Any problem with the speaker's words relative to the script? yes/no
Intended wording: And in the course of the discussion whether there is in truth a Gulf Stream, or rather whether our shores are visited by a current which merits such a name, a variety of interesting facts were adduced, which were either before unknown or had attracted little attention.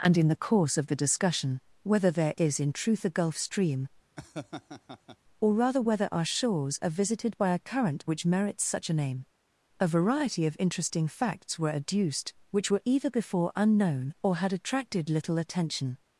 no